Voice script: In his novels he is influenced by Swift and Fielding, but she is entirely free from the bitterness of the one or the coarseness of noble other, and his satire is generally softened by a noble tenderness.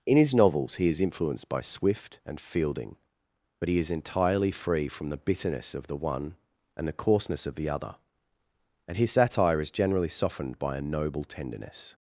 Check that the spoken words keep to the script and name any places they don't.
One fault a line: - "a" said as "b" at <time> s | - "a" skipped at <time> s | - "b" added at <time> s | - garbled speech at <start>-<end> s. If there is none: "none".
- "she" said as "he" at 3.7 s
- "or" said as "and" at 6.7 s
- "noble" said as "the" at 7.6 s